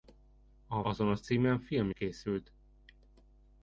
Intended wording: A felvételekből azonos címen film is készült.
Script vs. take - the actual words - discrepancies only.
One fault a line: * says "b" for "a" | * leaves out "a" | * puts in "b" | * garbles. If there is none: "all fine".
* leaves out "felvételekből"
* leaves out "is"